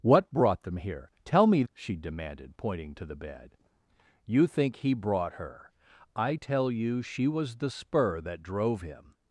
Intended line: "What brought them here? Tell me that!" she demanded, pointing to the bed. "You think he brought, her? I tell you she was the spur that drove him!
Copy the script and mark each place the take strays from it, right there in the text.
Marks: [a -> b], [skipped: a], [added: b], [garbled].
"What brought them here? Tell me [skipped: that!"] she demanded, pointing to the bed. "You think he brought, her? I tell you she was the spur that drove him!